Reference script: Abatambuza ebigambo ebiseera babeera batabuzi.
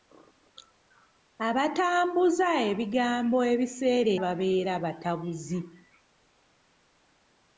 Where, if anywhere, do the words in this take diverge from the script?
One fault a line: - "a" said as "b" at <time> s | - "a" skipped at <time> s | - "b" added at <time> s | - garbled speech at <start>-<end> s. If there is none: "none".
none